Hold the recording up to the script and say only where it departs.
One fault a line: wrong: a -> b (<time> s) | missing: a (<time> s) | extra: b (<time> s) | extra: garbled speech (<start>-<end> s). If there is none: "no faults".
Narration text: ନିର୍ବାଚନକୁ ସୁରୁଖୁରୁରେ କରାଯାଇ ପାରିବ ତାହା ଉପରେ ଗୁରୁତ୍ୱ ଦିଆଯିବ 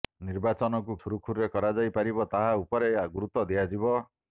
no faults